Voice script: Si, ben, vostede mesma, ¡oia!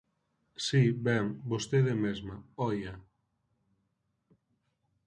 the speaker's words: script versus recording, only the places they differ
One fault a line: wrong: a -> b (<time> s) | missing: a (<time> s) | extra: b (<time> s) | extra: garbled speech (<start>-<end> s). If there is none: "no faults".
no faults